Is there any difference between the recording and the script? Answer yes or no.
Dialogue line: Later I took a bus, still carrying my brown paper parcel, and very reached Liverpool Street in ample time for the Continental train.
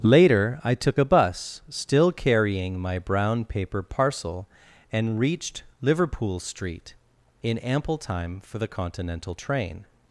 yes